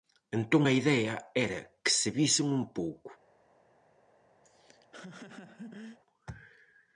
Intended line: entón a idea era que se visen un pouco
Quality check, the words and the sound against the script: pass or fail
fail